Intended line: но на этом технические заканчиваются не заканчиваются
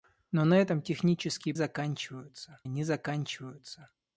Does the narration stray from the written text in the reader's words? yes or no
no